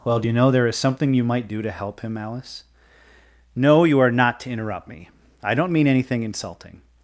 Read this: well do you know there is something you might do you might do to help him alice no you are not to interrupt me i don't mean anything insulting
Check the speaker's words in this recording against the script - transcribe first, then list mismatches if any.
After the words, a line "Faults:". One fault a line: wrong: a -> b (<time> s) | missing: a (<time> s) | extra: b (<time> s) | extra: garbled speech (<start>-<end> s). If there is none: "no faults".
well do you know there is something you might do to help him alice no you are not to interrupt me i don't mean anything insulting
Faults:
missing: you might do (1.6 s)